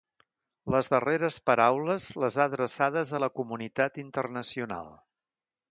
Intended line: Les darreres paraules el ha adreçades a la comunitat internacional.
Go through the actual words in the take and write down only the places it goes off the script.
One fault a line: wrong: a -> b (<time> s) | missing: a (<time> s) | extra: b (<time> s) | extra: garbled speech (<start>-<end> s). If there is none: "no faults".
wrong: el -> les (2.2 s)